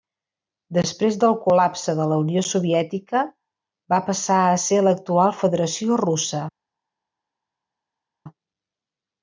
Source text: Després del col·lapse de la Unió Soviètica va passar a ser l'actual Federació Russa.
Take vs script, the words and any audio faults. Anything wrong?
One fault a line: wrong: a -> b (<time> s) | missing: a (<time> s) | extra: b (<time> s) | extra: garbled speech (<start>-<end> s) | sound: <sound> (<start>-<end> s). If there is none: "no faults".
no faults